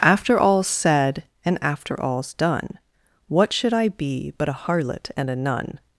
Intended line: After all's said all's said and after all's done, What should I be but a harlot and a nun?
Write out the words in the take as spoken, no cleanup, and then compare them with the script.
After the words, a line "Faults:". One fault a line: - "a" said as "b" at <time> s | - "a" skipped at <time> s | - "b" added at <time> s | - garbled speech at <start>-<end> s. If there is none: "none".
After all's said and after all's done, What should I be but a harlot and a nun?
Faults:
- "all's said" skipped at 1.2 s